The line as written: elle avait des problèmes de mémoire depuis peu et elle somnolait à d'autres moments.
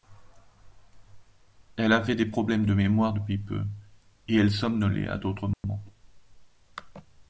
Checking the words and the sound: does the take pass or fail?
fail